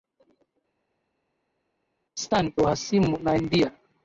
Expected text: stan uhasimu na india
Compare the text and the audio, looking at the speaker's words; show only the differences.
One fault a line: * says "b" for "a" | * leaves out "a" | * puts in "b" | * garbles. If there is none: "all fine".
all fine